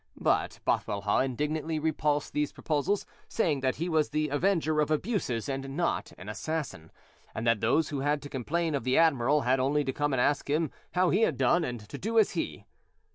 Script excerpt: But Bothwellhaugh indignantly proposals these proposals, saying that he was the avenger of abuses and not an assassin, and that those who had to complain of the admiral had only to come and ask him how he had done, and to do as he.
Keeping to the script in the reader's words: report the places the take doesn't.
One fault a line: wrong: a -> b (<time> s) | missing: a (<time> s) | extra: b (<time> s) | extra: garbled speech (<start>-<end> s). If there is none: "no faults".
wrong: proposals -> repulsed (1.8 s)